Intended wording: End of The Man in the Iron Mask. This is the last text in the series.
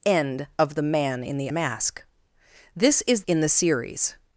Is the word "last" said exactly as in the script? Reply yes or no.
no